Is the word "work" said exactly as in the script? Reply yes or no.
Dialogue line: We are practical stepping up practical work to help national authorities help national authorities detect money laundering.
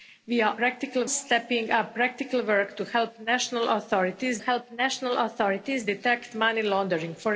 yes